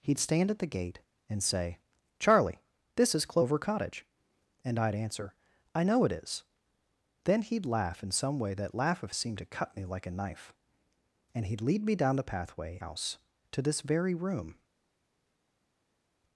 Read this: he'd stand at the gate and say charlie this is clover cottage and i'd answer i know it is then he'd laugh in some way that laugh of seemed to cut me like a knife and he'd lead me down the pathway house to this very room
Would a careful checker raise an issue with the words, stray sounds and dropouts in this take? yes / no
no